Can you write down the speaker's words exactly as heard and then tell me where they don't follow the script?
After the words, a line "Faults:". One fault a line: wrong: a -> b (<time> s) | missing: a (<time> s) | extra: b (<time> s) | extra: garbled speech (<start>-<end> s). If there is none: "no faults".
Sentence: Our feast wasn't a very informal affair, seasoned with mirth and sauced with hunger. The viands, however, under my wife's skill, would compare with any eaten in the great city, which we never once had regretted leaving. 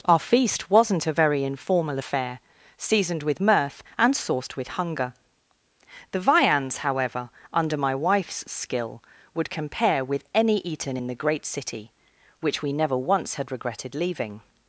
Our feast wasn't a very informal affair, seasoned with mirth and sauced with hunger. The viands, however, under my wife's skill, would compare with any eaten in the great city, which we never once had regretted leaving.
Faults:
no faults